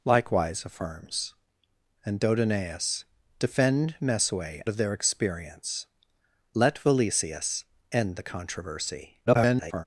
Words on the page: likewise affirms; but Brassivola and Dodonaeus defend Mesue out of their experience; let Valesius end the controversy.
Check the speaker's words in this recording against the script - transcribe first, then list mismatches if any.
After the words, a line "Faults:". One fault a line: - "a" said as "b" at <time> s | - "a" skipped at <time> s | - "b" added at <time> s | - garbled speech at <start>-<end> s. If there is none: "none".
likewise affirms; and Dodonaeus defend Mesue of their experience; let Valesius end the controversy. [garbled]
Faults:
- "but Brassivola" skipped at 1.4 s
- "out" skipped at 4.6 s
- garbled speech at 9.3-9.8 s